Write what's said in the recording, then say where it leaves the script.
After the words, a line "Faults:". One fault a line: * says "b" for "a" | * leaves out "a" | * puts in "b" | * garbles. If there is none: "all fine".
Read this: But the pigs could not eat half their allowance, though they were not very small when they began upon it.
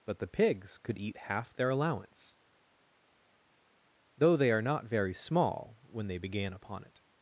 But the pigs could eat half their allowance, though they are not very small when they began upon it.
Faults:
* leaves out "not"
* says "are" for "were"